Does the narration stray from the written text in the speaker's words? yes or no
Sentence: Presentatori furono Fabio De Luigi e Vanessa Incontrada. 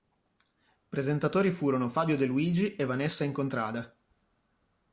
no